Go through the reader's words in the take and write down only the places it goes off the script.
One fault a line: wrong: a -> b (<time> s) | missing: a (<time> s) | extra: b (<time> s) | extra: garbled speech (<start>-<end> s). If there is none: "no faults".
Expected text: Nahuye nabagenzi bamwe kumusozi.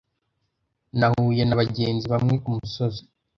no faults